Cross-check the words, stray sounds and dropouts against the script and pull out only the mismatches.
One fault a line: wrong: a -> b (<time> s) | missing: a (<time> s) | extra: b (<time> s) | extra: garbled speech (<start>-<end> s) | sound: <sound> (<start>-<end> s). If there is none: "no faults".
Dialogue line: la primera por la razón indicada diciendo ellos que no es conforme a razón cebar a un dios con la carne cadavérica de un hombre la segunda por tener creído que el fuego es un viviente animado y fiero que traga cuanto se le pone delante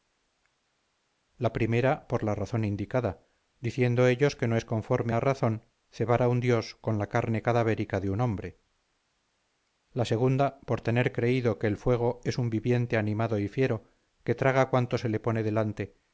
no faults